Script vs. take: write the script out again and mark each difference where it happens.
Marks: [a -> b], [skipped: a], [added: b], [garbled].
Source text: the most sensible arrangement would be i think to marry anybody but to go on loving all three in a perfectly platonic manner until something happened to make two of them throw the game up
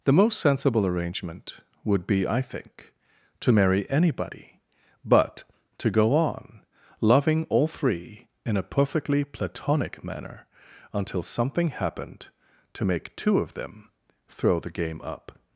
the most sensible arrangement would be i think to marry anybody but to go on loving all three in a perfectly platonic manner until something happened to make two of them throw the game up